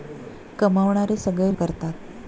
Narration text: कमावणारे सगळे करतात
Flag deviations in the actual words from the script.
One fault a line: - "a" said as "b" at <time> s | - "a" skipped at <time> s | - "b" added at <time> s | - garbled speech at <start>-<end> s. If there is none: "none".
none